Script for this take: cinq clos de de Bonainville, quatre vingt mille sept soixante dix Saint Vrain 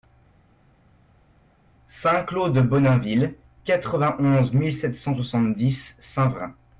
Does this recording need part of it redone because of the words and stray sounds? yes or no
yes